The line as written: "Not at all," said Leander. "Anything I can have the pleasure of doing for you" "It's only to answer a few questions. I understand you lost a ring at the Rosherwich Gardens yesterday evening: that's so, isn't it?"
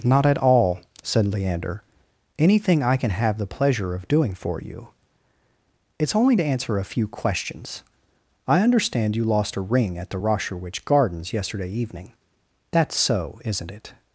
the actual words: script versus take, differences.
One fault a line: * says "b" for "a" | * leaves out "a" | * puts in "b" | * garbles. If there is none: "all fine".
all fine